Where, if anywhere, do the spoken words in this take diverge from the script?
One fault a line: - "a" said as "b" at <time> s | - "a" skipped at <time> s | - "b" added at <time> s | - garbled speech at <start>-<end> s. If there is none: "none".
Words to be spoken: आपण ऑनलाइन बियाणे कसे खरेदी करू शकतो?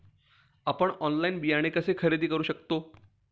none